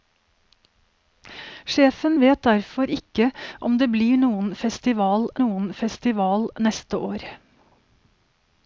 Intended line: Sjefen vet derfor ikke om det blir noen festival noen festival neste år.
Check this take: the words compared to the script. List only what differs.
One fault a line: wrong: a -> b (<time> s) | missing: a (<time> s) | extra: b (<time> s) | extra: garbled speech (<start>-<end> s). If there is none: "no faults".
no faults